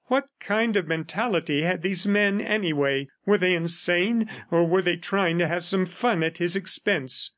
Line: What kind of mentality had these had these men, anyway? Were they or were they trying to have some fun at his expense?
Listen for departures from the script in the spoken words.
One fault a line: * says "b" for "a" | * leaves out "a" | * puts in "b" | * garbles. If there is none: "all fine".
* leaves out "had these"
* puts in "insane"